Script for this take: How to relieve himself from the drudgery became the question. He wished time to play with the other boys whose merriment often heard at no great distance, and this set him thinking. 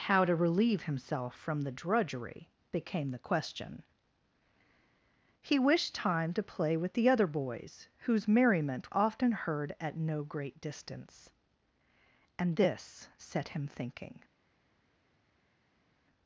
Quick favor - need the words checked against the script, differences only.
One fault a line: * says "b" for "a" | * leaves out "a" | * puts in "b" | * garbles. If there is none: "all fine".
all fine